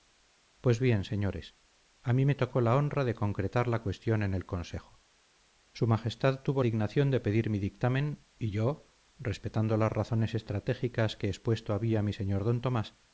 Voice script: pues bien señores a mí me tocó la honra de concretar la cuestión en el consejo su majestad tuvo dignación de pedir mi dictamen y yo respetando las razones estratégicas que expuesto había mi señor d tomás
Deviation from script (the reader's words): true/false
false